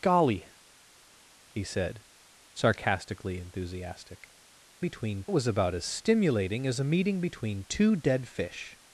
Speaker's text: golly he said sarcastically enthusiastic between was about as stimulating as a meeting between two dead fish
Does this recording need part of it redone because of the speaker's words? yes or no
no